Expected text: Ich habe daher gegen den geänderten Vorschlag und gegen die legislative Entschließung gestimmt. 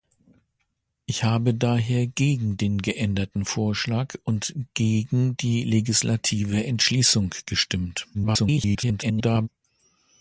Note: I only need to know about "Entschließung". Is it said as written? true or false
true